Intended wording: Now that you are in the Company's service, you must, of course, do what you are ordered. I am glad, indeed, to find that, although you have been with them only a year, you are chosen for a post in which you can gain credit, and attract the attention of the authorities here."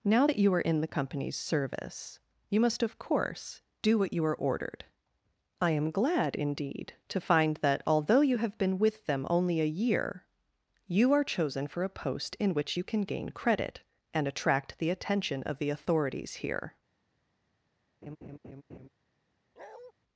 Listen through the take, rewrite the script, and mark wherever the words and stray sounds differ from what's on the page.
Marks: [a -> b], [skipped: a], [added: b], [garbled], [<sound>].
Now that you are in the Company's service, you must, of course, do what you are ordered. I am glad, indeed, to find that, although you have been with them only a year, you are chosen for a post in which you can gain credit, and attract the attention of the authorities here." [laugh] [bark]